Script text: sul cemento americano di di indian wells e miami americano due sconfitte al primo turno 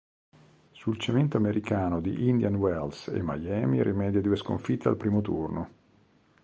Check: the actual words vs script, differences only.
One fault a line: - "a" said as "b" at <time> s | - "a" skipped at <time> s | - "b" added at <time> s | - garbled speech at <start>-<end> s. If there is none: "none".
- "di" skipped at 2.3 s
- "americano" said as "rimedia" at 3.8 s